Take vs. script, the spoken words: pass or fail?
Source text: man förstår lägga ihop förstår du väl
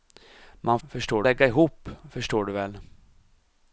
pass